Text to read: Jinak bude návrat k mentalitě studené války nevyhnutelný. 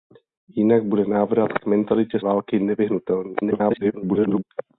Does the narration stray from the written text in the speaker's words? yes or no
yes